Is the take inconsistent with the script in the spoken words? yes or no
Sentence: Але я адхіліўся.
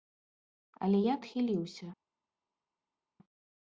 no